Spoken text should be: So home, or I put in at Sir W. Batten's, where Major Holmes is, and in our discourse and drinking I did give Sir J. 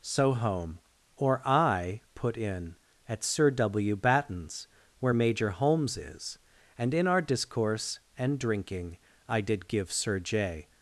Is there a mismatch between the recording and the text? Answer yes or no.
no